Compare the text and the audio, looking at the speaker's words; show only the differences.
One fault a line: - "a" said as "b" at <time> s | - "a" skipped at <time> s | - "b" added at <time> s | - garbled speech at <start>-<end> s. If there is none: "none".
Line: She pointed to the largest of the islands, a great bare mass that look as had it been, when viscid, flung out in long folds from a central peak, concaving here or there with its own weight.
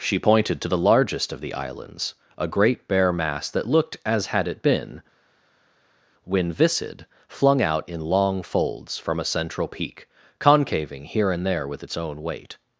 - "look" said as "looked" at 3.7 s
- "or" said as "and" at 11.3 s